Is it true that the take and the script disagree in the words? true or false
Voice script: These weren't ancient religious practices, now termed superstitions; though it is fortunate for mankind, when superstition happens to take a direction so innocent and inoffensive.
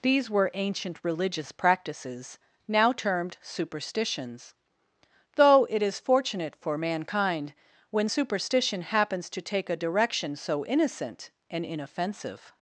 true